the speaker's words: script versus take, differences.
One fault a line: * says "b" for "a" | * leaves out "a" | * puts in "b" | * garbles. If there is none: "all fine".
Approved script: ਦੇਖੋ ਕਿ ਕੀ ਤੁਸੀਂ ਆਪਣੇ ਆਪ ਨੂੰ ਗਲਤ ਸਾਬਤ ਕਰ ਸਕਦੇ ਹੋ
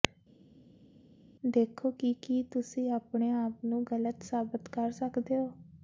all fine